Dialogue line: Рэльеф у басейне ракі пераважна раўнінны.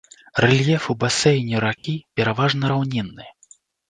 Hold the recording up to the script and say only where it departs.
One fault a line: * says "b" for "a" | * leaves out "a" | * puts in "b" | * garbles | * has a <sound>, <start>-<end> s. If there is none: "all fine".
* has a dropout, 1.8-1.8 s